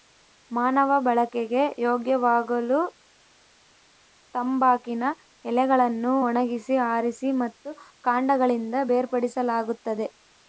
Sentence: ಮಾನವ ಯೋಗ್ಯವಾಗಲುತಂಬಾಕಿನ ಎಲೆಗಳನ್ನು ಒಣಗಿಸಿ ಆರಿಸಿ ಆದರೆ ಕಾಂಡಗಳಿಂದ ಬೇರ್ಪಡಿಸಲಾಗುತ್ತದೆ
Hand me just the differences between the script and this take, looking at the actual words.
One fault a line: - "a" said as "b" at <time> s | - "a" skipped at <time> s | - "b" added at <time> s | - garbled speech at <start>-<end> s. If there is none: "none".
- "ಬಳಕೆಗೆ" added at 1.0 s
- "ಆದರೆ" said as "ಮತ್ತು" at 7.4 s